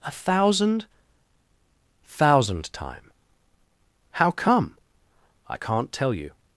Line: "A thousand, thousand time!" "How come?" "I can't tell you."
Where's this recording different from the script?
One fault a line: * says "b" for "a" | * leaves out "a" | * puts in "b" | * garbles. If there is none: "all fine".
all fine